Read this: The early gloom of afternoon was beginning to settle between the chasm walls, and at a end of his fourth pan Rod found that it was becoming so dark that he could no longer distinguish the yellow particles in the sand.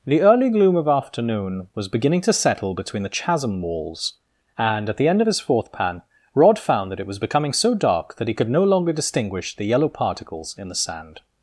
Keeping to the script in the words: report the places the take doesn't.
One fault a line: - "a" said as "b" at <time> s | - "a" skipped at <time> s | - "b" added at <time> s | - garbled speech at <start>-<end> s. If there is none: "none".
- "a" said as "the" at 5.0 s